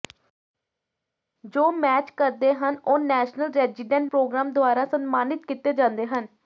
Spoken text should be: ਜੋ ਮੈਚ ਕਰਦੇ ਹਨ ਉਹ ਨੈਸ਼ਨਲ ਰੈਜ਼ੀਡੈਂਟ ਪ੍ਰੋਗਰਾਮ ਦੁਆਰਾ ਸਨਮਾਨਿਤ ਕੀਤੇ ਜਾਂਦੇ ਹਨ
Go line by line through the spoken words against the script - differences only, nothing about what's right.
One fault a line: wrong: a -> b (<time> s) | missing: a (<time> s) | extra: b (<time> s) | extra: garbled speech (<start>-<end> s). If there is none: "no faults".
no faults